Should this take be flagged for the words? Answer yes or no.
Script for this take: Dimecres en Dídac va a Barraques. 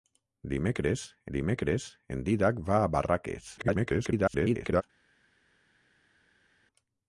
yes